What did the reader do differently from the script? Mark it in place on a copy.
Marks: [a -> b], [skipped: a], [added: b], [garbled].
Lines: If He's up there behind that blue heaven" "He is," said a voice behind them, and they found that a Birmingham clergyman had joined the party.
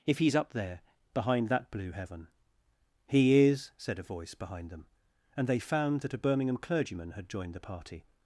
If He's up there behind that blue heaven" "He is," said a voice behind them, and they found that a Birmingham clergyman had joined the party.